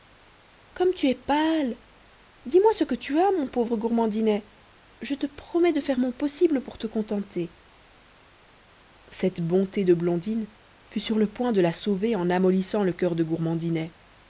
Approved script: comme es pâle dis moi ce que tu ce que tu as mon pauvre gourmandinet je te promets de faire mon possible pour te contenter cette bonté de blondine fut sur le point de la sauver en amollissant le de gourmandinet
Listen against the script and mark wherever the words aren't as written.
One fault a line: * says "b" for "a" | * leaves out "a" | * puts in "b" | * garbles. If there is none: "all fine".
* puts in "tu"
* leaves out "ce que tu"
* puts in "coeur"